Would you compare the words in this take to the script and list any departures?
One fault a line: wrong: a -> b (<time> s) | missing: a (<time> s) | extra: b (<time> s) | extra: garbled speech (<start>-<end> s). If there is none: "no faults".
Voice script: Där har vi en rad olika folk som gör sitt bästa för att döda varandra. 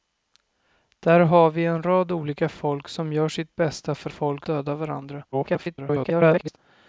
wrong: att -> folk (4.1 s)
extra: garbled speech (5.3-6.6 s)